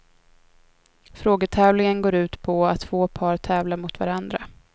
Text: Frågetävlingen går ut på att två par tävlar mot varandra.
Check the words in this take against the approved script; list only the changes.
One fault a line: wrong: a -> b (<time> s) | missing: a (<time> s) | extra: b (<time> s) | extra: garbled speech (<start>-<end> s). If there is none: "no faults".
no faults